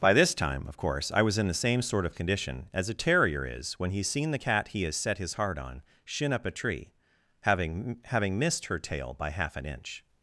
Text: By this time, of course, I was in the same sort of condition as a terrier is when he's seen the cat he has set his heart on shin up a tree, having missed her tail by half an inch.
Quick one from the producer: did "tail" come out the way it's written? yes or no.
yes